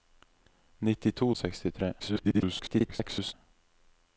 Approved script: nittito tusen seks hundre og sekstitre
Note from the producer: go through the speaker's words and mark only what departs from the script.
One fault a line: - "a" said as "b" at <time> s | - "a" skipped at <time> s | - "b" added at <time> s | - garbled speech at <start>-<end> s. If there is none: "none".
- "tusen seks hundre" skipped at 1.3 s
- garbled speech at 2.0-3.3 s